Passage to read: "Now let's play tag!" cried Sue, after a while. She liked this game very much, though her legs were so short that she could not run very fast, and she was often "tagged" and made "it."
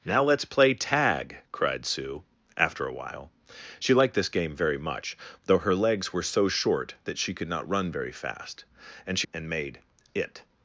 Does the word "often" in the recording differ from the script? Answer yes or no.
yes